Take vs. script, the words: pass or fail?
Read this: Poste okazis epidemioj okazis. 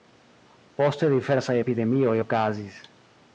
fail